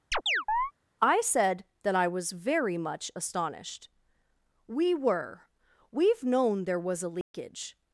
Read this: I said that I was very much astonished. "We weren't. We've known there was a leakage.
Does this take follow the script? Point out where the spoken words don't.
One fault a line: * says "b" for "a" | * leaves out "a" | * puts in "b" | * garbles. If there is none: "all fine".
* says "were" for "weren't"